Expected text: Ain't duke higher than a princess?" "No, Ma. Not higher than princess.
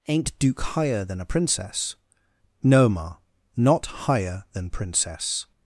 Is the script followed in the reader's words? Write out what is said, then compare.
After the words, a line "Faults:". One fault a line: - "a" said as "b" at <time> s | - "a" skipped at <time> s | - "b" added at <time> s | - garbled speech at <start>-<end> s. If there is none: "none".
Ain't duke higher than a princess?" "No, Ma. Not higher than princess.
Faults:
none